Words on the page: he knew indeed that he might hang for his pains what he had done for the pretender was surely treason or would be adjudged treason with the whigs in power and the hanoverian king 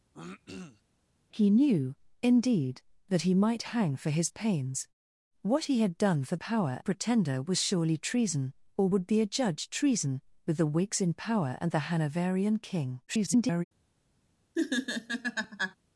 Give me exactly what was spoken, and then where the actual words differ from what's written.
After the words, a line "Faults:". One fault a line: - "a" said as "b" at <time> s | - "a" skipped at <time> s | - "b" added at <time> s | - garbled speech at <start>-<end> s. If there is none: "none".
he knew indeed that he might hang for his pains what he had done for power pretender was surely treason or would be adjudged treason with the whigs in power and the hanoverian king [garbled]
Faults:
- "the" said as "power" at 6.3 s
- garbled speech at 13.1-13.6 s